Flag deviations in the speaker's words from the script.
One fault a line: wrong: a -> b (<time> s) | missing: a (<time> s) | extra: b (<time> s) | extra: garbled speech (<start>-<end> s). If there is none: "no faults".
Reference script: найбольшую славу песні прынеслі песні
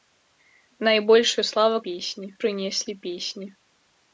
no faults